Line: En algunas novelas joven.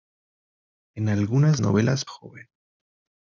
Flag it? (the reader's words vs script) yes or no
no